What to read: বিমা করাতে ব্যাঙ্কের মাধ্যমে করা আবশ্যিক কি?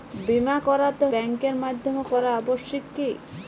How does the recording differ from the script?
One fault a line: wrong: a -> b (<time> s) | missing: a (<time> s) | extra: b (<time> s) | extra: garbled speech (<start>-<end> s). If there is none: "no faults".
no faults